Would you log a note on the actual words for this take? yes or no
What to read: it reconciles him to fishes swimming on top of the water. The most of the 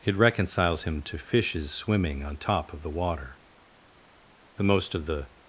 no